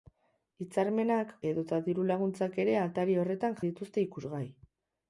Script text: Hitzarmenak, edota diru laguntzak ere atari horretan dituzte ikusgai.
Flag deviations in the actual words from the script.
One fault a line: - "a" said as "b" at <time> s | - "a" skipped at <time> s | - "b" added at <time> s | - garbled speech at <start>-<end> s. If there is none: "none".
none